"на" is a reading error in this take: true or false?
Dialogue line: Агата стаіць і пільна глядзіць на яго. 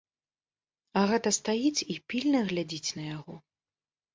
false